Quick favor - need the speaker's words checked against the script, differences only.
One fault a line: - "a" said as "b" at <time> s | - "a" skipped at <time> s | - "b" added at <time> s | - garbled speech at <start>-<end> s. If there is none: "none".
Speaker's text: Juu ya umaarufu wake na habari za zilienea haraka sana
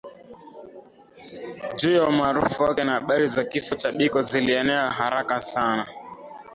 - "kifo cha Biko" added at 3.4 s